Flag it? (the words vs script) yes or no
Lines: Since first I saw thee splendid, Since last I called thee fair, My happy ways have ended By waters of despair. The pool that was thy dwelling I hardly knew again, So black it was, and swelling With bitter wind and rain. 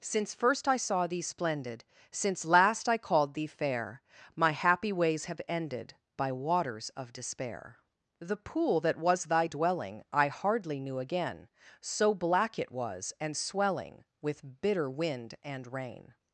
no